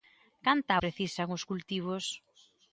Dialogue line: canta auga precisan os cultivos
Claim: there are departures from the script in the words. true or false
true